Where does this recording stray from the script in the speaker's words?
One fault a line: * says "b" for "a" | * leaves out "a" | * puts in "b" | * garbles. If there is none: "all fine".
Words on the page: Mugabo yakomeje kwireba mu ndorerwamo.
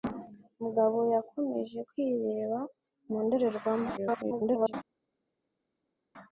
* garbles